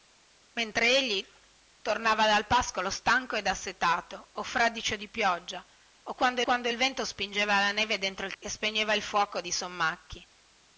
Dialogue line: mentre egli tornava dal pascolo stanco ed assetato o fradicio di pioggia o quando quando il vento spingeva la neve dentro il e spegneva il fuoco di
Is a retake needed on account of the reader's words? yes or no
no